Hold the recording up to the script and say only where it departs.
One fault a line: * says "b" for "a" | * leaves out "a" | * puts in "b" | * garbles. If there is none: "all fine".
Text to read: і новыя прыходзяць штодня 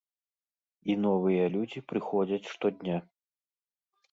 * puts in "людзі"